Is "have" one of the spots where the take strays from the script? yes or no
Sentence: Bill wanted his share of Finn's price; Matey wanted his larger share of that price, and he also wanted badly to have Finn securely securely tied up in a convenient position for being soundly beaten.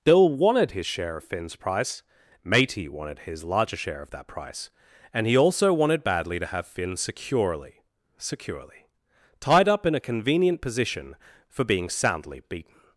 no